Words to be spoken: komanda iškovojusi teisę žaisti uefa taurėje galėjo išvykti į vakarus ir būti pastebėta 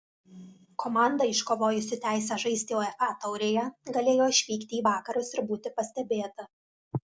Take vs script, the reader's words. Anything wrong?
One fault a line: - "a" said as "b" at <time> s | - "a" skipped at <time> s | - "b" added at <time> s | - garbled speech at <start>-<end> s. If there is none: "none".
none